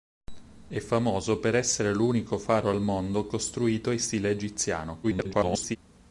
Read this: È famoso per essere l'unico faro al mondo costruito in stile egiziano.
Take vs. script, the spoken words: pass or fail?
fail